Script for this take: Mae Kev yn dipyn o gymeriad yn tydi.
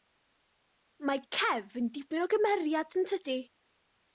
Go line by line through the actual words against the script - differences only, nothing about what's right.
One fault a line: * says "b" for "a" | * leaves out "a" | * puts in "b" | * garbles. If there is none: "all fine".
all fine